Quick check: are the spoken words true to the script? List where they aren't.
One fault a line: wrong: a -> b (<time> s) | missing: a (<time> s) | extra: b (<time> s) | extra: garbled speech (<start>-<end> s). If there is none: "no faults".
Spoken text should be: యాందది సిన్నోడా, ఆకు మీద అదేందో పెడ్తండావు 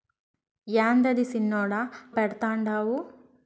missing: ఆకు మీద అదేందో (1.8 s)